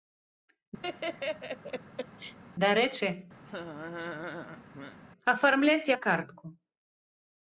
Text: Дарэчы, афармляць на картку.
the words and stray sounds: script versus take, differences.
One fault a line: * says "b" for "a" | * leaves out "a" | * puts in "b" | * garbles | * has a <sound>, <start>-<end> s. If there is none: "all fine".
* has a laugh, 0.8-2.4 s
* has a laugh, 3.4-5.0 s